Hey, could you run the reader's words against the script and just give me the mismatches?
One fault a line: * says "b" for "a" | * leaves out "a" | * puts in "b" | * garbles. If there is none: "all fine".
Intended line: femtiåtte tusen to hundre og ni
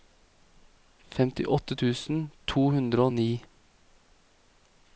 all fine